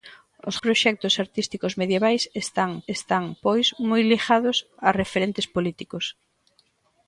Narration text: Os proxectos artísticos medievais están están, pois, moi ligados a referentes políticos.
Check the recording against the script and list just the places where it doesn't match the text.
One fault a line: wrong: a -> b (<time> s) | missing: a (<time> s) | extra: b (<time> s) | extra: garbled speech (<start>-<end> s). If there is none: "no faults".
no faults